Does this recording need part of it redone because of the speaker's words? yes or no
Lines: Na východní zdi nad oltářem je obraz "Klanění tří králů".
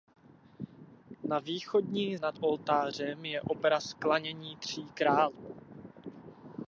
yes